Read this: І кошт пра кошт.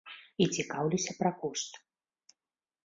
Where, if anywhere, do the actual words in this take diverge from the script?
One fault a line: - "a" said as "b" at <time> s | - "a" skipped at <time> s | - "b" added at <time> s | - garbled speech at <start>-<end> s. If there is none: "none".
- "кошт" said as "цікаўлюся" at 0.6 s